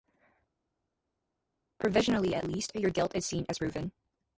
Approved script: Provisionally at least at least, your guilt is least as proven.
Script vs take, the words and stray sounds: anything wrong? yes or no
yes